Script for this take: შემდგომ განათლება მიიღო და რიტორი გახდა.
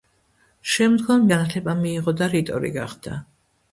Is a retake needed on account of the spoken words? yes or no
no